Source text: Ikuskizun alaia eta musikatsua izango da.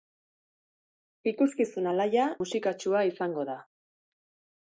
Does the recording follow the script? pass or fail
fail